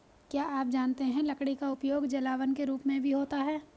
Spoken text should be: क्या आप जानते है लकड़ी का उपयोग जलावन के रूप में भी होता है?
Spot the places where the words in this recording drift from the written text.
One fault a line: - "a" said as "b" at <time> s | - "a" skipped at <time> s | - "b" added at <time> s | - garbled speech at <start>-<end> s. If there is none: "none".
none